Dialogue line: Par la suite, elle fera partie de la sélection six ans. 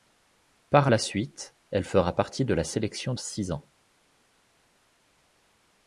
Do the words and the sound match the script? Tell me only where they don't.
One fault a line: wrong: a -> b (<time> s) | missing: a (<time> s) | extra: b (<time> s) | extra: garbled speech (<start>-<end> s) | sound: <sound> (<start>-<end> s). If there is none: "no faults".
no faults